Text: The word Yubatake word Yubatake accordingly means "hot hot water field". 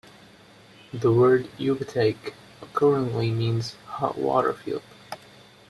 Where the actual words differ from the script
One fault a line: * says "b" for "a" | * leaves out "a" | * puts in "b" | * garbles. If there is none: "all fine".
* leaves out "word Yubatake"
* leaves out "hot"